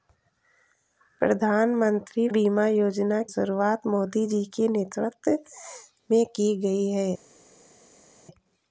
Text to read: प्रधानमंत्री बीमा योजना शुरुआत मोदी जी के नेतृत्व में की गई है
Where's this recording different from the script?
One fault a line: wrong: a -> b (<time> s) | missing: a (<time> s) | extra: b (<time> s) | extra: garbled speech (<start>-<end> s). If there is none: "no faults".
no faults